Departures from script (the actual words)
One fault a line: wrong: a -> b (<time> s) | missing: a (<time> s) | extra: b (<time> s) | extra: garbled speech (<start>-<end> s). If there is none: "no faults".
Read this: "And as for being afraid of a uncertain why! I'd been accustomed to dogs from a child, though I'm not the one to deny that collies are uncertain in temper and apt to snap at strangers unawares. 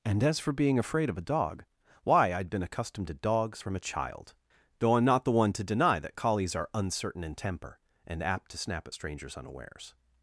wrong: uncertain -> dog (1.3 s)